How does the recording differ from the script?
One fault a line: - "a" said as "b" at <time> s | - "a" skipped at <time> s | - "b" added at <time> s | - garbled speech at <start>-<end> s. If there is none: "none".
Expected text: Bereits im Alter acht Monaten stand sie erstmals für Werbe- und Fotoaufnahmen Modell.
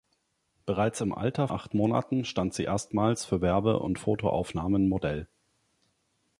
none